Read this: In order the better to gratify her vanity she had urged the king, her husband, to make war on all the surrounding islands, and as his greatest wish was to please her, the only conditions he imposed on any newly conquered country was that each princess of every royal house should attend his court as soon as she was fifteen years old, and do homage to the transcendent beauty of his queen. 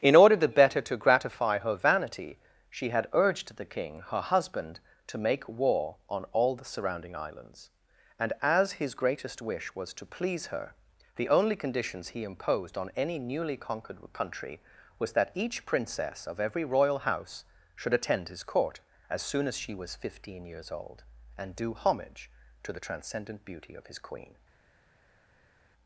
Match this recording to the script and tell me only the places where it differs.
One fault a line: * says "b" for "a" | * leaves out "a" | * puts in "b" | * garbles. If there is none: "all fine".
all fine